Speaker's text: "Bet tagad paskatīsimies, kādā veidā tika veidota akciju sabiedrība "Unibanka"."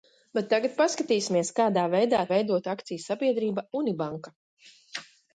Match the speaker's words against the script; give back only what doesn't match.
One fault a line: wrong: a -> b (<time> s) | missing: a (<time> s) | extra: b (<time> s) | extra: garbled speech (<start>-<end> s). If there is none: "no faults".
missing: tika (2.2 s)